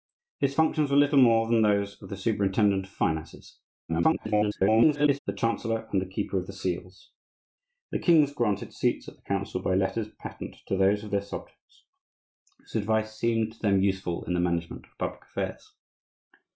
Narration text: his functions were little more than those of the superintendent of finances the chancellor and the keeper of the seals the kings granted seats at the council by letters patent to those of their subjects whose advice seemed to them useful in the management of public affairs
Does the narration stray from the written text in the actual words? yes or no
yes